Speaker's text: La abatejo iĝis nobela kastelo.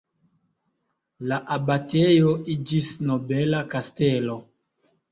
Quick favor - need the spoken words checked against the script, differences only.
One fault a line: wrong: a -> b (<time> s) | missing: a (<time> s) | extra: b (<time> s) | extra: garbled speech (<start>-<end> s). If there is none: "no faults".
no faults